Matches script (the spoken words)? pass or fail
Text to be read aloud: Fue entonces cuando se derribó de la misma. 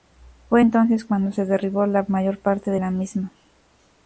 fail